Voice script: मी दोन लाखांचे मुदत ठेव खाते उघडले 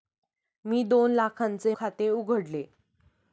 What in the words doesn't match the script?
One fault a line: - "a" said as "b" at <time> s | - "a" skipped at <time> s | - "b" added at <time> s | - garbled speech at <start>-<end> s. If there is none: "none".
- "मुदत ठेव" skipped at 1.7 s